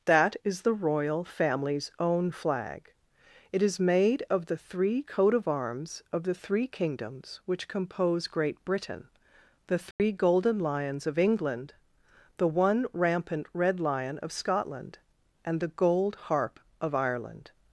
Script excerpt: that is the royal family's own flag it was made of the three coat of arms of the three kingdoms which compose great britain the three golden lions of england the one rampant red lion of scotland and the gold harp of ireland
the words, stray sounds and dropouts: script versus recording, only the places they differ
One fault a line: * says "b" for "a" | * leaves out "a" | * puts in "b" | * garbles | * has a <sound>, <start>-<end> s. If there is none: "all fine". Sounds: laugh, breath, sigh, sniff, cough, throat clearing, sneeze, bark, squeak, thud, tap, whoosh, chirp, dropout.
* says "is" for "was"
* has a dropout, 9.9-10.0 s